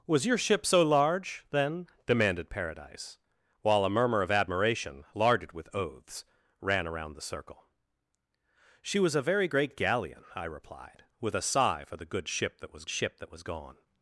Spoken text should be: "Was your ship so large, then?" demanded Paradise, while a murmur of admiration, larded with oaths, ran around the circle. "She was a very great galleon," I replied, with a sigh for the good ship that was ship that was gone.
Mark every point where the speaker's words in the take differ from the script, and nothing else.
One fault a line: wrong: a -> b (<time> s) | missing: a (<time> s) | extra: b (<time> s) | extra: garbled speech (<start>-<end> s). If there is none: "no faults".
no faults